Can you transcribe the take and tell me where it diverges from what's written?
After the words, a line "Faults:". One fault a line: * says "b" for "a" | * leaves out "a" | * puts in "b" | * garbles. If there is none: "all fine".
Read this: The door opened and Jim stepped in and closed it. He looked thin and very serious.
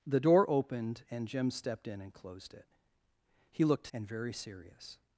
The door opened and Jim stepped in and closed it. He looked and very serious.
Faults:
* leaves out "thin"